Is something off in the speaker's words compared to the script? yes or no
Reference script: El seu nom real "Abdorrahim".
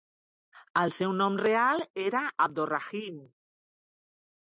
yes